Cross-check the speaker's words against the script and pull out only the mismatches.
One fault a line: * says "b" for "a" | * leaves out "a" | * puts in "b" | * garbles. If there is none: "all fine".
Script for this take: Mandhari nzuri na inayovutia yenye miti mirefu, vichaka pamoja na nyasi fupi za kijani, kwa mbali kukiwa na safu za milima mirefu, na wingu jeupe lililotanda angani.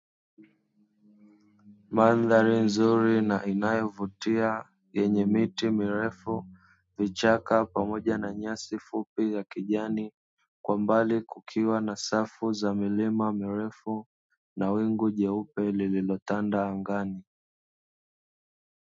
all fine